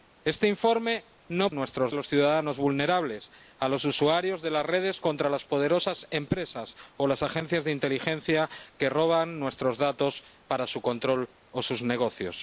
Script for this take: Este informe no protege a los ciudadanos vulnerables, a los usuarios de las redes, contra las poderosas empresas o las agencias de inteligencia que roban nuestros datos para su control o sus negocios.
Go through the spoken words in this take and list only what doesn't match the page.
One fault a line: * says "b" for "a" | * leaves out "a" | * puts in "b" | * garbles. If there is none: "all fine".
* says "nuestros" for "protege"